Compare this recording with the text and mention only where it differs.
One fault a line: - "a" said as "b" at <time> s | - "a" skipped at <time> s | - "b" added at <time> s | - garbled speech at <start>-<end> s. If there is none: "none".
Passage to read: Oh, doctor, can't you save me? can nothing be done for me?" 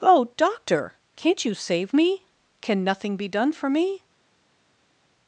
none